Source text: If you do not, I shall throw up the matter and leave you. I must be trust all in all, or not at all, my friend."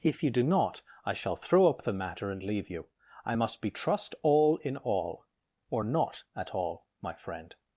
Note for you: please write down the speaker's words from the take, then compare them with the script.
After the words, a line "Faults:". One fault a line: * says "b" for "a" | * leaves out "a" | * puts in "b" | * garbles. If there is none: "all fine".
If you do not, I shall throw up the matter and leave you. I must be trust all in all, or not at all, my friend."
Faults:
all fine